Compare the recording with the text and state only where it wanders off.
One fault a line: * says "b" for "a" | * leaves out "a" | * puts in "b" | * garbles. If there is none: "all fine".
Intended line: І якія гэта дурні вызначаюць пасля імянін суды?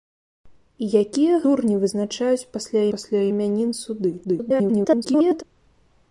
* leaves out "гэта"
* puts in "пасля"
* garbles